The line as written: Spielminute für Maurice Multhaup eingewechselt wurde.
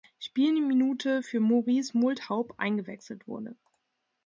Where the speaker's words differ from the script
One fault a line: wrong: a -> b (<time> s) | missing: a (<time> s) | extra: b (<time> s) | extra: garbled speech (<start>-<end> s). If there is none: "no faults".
no faults